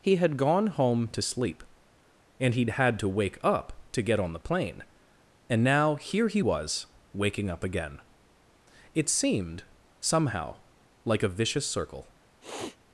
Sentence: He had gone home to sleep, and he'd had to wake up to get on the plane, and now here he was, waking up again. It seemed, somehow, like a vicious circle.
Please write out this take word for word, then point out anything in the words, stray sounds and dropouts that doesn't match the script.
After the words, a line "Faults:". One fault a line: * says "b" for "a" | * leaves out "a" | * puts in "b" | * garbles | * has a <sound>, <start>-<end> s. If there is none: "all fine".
He had gone home to sleep, and he'd had to wake up to get on the plane, and now here he was, waking up again. It seemed, somehow, like a vicious circle.
Faults:
* has a sniff, 12.4-12.8 s